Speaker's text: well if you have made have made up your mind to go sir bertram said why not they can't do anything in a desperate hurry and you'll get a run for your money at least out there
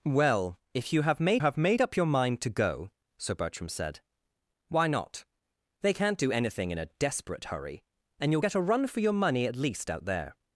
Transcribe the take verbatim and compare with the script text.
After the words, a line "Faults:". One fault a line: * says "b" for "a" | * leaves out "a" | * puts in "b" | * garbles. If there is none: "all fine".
well if you have made have made up your mind to go sir bertram said why not they can't do anything in a desperate hurry and you'll get a run for your money at least out there
Faults:
all fine